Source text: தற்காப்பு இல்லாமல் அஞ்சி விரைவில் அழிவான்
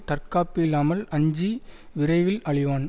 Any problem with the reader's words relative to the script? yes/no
no